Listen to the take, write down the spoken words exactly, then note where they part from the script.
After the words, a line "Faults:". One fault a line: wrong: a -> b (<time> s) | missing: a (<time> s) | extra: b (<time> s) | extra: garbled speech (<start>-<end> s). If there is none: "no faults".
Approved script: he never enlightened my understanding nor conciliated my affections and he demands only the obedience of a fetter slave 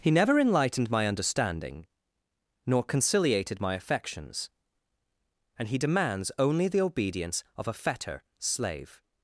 he never enlightened my understanding nor conciliated my affections and he demands only the obedience of a fetter slave
Faults:
no faults